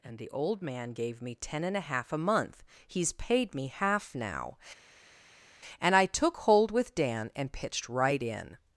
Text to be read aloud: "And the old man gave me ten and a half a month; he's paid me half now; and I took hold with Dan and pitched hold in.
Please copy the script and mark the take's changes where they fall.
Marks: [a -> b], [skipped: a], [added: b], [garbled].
"And the old man gave me ten and a half a month; he's paid me half now; and I took hold with Dan and pitched [hold -> right] in.